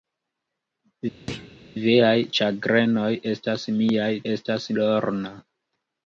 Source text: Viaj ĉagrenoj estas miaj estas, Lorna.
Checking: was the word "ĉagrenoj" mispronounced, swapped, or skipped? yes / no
no